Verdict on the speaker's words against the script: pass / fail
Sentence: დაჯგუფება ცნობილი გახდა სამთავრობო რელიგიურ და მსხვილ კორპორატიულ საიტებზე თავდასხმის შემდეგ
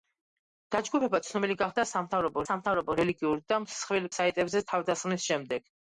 fail